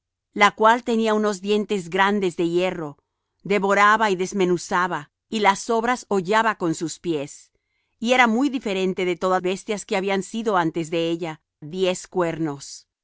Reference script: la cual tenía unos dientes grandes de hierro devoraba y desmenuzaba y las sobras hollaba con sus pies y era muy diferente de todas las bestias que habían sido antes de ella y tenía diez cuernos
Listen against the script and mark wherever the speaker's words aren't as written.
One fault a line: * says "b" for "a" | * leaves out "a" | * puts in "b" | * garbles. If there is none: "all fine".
* leaves out "las"
* leaves out "y tenía"